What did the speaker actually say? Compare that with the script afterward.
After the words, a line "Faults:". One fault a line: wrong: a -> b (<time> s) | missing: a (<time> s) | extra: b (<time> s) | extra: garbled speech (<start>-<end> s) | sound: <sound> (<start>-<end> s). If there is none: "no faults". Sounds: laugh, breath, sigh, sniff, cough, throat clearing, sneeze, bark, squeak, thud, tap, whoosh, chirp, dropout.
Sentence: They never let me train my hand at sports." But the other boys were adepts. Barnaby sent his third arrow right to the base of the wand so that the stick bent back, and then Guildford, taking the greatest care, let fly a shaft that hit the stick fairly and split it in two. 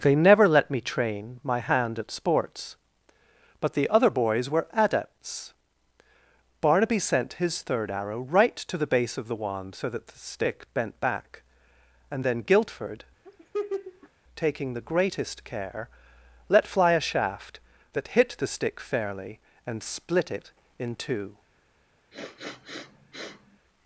They never let me train my hand at sports." But the other boys were adepts. Barnaby sent his third arrow right to the base of the wand so that the stick bent back, and then Guildford, taking the greatest care, let fly a shaft that hit the stick fairly and split it in two.
Faults:
sound: laugh (13.2-14.1 s)
sound: sniff (22.1-23.6 s)